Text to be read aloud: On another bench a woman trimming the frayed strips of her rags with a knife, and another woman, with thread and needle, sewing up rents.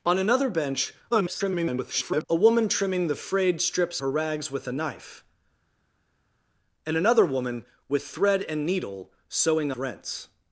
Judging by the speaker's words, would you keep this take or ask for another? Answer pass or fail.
fail